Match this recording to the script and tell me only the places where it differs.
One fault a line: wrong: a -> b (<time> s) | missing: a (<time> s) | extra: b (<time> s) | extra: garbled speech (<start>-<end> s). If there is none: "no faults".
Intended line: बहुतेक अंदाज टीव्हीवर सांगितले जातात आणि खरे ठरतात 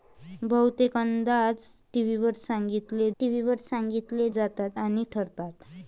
extra: टीव्हीवर सांगितले (3.2 s)
missing: खरे (5.0 s)